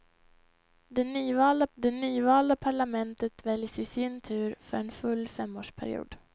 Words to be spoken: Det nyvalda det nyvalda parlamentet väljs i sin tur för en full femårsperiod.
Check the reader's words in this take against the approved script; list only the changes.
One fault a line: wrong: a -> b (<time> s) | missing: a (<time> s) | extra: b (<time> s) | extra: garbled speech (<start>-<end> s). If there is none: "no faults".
no faults